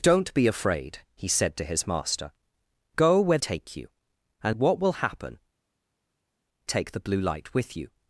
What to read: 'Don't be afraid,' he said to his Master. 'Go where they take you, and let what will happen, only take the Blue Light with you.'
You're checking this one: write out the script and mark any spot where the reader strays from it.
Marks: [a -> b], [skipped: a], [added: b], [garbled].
'Don't be afraid,' he said to his Master. 'Go where [skipped: they] take you, and [skipped: let] what will happen, [skipped: only] take the Blue Light with you.'